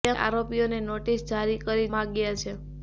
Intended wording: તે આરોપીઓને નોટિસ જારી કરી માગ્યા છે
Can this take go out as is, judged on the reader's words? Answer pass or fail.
pass